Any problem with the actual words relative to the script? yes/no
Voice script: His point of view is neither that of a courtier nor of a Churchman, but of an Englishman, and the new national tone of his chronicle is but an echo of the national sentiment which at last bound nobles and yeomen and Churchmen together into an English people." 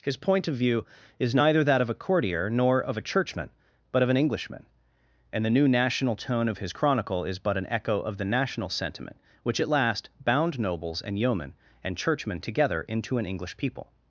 no